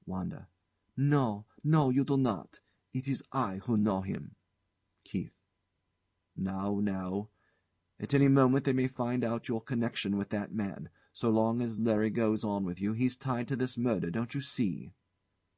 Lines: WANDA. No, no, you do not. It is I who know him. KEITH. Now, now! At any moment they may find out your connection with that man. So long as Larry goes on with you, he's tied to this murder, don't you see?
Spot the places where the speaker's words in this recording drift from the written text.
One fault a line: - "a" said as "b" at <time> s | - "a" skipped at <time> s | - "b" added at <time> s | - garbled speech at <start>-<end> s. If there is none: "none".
none